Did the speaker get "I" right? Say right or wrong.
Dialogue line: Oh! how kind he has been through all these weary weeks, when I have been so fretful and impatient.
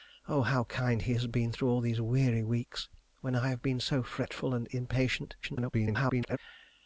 right